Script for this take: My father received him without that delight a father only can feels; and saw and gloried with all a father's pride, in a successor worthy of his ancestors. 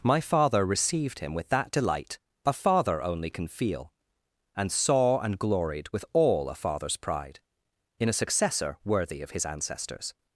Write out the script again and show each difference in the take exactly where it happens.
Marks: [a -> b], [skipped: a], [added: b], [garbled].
My father received him [without -> with] that delight a father only can [feels; -> feel] and saw and gloried with all a father's pride, in a successor worthy of his ancestors.